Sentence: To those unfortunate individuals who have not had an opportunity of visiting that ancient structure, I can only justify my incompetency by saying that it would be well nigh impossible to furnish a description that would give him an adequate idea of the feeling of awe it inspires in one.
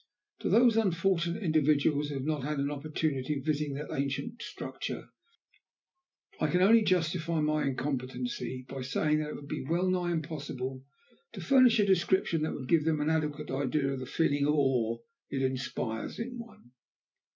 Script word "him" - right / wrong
wrong